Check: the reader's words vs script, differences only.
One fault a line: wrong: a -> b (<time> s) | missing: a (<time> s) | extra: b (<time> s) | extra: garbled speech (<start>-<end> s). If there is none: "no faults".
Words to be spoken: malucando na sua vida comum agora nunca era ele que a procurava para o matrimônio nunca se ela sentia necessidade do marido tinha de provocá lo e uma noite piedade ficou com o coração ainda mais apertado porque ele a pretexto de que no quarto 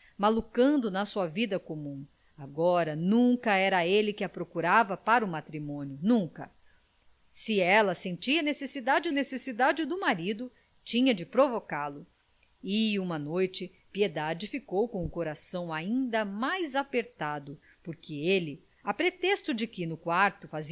extra: necessidade (9.1 s)